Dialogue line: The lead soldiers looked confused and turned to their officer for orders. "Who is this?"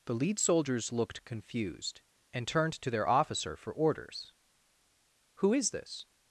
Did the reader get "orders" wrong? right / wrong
right